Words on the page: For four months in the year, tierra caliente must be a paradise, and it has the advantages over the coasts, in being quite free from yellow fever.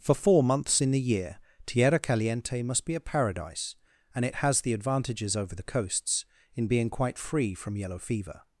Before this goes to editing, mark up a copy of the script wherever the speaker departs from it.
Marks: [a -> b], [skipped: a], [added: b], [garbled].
For four months in the year, tierra caliente must be a paradise, and it has the advantages over the coasts, in being quite free from yellow fever.